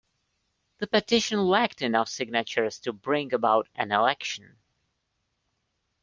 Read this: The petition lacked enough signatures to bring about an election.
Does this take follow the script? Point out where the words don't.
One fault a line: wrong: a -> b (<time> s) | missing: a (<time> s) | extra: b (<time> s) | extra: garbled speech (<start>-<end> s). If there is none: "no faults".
no faults